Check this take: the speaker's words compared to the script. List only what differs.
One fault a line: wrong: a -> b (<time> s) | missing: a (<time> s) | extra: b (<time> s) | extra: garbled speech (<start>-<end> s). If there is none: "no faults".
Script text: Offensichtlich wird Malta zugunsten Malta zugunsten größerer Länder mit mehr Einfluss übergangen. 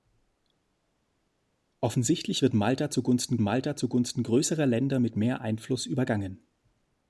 no faults